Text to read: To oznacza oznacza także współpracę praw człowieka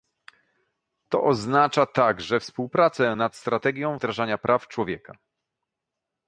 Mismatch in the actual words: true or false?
true